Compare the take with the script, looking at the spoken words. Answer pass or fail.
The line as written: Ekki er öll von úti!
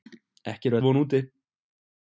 fail